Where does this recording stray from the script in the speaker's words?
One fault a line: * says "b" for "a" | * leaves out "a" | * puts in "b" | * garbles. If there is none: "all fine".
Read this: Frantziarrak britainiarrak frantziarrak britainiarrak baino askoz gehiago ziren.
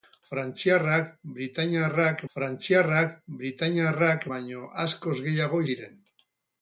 all fine